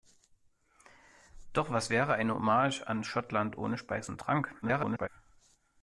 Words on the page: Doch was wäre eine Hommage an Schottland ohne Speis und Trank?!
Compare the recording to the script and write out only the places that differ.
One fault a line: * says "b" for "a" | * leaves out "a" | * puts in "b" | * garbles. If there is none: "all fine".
* garbles